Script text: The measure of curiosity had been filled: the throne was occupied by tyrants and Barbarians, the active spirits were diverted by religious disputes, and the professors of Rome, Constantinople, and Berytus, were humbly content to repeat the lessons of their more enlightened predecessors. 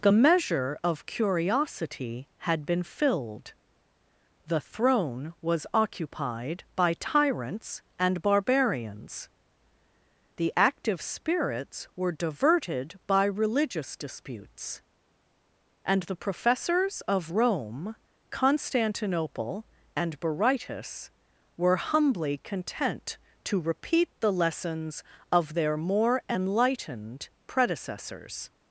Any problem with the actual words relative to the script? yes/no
no